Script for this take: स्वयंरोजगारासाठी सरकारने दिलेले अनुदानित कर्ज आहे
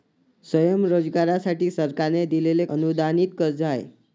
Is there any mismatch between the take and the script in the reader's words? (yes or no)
no